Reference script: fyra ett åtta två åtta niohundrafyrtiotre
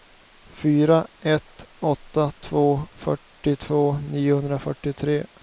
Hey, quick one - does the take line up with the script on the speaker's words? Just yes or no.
no